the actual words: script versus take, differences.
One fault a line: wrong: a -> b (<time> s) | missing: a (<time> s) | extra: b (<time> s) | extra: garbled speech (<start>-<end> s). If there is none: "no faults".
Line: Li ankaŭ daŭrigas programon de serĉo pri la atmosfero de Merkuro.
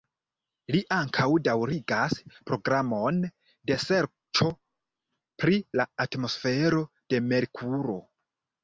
no faults